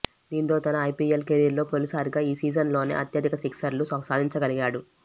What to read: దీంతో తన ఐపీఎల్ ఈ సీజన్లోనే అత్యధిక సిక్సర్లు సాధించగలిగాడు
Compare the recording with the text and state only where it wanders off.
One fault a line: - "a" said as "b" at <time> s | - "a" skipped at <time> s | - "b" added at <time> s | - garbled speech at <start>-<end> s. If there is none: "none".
- "కెరీర్లో తొలిసారిగా" added at 1.3 s